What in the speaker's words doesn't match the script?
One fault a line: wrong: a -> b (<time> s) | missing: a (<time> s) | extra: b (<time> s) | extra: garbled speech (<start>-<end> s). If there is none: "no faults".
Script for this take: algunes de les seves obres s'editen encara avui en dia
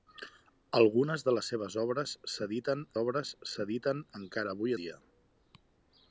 extra: obres s'editen (3.0 s)
missing: en (4.8 s)